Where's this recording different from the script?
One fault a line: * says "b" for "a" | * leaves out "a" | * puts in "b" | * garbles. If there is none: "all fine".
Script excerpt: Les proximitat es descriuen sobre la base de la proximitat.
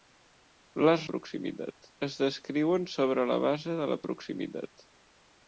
all fine